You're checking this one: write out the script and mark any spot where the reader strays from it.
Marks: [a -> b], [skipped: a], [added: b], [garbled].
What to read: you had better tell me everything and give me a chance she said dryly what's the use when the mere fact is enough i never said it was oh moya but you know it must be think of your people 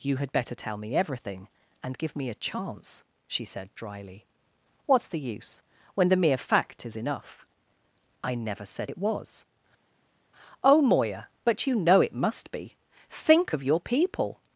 you had better tell me everything and give me a chance she said dryly what's the use when the mere fact is enough i never said it was oh moya but you know it must be think of your people